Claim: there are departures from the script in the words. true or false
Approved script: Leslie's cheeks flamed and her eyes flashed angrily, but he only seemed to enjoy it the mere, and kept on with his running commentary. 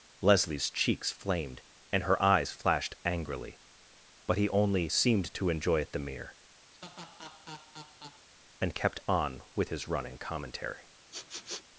false